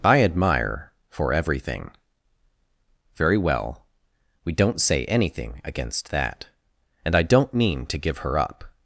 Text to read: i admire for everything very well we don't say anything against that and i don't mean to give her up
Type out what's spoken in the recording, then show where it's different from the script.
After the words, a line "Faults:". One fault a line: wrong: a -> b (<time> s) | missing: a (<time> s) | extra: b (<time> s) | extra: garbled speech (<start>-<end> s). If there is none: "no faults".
i admire for everything very well we don't say anything against that and i don't mean to give her up
Faults:
no faults